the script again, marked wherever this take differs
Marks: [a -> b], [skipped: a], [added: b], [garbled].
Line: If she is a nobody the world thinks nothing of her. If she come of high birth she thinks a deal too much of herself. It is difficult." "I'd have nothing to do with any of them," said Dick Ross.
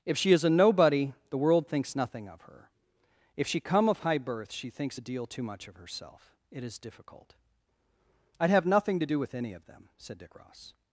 If she is a nobody the world thinks nothing of her. If she come of high birth she thinks a deal too much of herself. It is difficult." "I'd have nothing to do with any of them," said Dick Ross.